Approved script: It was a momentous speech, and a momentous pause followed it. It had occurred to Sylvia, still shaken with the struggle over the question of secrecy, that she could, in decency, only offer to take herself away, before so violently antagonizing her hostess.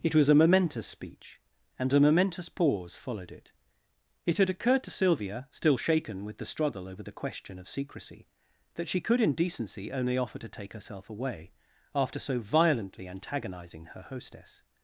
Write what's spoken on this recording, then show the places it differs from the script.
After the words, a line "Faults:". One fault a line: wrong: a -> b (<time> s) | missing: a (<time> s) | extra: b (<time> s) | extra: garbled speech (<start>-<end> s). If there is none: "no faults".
It was a momentous speech, and a momentous pause followed it. It had occurred to Sylvia, still shaken with the struggle over the question of secrecy, that she could, in decency, only offer to take herself away, after so violently antagonizing her hostess.
Faults:
wrong: before -> after (11.9 s)